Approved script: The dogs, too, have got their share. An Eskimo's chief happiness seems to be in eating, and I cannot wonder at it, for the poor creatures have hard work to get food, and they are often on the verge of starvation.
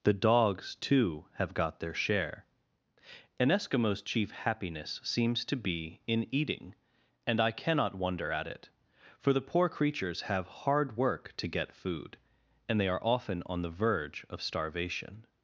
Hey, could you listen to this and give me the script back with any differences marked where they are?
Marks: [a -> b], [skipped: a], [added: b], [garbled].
The dogs, too, have got their share. An Eskimo's chief happiness seems to be in eating, and I cannot wonder at it, for the poor creatures have hard work to get food, and they are often on the verge of starvation.